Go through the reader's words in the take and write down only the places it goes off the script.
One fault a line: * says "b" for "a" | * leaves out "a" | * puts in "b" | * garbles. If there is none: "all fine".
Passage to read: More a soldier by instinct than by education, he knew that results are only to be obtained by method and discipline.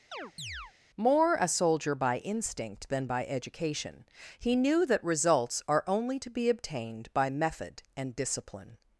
all fine